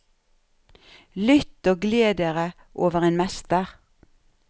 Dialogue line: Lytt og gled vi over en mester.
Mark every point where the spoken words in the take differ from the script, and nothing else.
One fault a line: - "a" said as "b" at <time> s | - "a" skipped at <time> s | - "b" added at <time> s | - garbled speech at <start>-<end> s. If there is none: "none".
- "vi" said as "dere" at 2.2 s